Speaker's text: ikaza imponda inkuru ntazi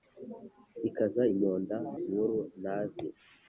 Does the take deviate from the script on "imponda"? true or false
false